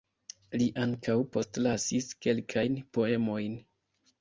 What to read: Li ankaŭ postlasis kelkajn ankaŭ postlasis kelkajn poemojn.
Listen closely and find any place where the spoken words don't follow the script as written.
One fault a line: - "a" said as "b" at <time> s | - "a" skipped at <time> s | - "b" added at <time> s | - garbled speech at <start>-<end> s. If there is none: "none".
- "ankaŭ postlasis kelkajn" skipped at 2.8 s